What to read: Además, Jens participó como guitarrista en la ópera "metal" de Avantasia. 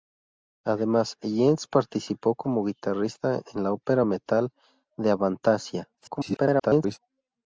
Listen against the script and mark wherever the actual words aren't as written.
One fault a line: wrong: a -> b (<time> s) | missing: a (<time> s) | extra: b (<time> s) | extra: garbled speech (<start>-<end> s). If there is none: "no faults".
extra: garbled speech (6.0-7.0 s)